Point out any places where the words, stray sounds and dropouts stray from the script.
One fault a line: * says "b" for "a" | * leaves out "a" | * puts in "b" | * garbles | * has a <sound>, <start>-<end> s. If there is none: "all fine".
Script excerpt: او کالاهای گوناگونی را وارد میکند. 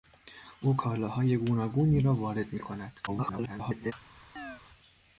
* garbles
* has a chirp, 4.4-4.6 s